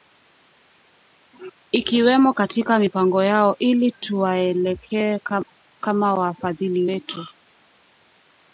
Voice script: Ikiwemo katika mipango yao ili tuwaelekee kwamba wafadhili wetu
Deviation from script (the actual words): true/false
true